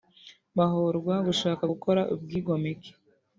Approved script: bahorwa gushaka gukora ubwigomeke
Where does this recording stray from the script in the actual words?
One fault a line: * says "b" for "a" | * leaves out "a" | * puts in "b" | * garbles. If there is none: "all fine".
all fine